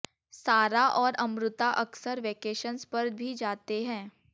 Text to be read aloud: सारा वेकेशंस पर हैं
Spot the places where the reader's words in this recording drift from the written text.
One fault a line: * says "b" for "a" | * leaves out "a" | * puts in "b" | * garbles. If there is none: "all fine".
* puts in "और अमृता अक्सर"
* puts in "भी जाते"